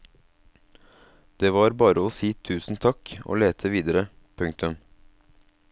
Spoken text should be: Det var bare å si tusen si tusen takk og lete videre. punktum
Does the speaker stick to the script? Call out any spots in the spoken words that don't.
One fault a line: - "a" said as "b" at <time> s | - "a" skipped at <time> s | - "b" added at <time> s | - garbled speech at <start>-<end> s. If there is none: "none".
- "si tusen" skipped at 2.8 s